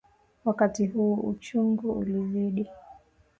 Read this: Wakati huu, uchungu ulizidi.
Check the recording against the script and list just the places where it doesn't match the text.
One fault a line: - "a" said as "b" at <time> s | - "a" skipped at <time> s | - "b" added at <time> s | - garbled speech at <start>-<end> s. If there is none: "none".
none